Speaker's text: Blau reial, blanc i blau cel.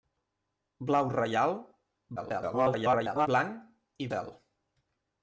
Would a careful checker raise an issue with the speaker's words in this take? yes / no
yes